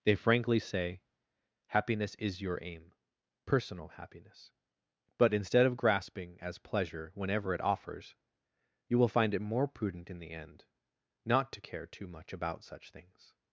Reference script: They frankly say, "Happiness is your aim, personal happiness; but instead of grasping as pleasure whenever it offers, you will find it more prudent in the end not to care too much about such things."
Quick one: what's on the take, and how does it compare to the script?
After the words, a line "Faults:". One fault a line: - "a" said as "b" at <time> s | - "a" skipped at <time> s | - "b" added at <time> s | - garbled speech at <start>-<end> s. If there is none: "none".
They frankly say, "Happiness is your aim, personal happiness; but instead of grasping as pleasure whenever it offers, you will find it more prudent in the end not to care too much about such things."
Faults:
none